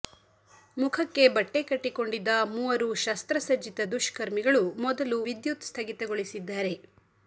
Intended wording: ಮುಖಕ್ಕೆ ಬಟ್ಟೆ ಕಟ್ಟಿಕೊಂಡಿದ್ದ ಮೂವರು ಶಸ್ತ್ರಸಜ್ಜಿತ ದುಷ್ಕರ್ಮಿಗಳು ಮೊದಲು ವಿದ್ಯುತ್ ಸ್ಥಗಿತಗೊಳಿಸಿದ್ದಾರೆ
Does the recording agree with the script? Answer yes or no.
yes